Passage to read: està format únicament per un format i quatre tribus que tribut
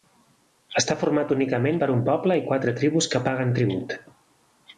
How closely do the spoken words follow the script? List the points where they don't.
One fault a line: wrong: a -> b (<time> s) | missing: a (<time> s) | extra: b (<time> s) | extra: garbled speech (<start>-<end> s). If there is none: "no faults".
wrong: format -> poble (2.1 s)
extra: paguen (3.3 s)